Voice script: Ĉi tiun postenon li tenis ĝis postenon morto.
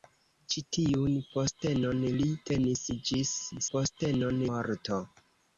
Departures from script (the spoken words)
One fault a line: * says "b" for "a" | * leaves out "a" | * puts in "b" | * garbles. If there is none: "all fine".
all fine